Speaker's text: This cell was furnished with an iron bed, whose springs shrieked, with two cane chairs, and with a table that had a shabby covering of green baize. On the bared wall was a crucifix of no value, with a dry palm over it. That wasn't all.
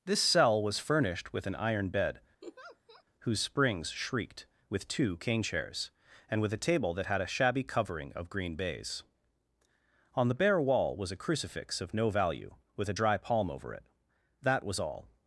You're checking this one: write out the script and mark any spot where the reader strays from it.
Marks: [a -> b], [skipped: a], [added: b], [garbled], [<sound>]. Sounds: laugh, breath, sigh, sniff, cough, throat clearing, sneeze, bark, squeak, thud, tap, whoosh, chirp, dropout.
This cell was furnished with an iron bed, [laugh] whose springs shrieked, with two cane chairs, and with a table that had a shabby covering of green baize. On the [bared -> bare] wall was a crucifix of no value, with a dry palm over it. That [wasn't -> was] all.